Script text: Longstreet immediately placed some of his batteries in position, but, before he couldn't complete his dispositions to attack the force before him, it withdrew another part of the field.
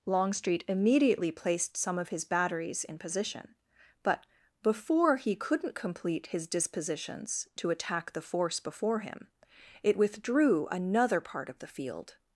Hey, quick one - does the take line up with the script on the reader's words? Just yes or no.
yes